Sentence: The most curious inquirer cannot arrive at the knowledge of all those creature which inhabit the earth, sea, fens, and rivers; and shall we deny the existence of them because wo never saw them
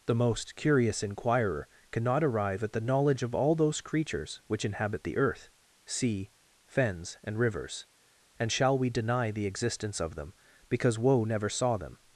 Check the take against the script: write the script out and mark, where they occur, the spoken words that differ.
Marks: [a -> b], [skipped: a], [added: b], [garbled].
The most curious inquirer cannot arrive at the knowledge of all those [creature -> creatures] which inhabit the earth, sea, fens, and rivers; and shall we deny the existence of them because wo never saw them